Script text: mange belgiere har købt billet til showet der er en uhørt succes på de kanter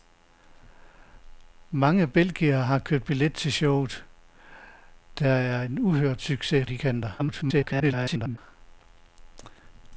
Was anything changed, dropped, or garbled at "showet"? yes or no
no